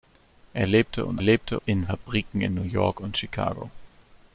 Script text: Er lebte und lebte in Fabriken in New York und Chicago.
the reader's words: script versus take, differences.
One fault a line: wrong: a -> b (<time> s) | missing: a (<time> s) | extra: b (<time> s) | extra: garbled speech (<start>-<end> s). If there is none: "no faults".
no faults